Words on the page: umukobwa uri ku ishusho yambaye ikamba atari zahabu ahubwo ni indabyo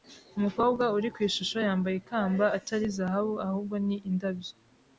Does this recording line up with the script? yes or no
yes